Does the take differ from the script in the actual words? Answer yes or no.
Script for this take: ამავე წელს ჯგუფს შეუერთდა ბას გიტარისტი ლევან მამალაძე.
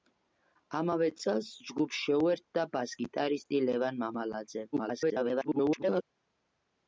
yes